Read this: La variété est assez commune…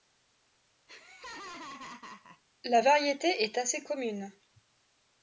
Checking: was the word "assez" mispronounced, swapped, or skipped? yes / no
no